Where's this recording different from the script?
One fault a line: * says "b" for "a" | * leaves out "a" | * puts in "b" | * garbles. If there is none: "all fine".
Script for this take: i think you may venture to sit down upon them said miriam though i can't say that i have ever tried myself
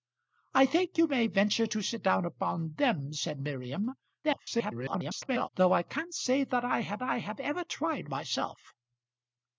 * garbles
* puts in "i have"